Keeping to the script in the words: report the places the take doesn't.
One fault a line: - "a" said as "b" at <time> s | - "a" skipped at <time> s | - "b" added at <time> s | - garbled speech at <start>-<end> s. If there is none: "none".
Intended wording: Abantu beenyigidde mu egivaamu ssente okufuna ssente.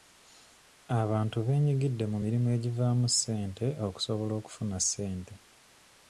- "mirimu" added at 2.2 s
- "okusobola" added at 3.9 s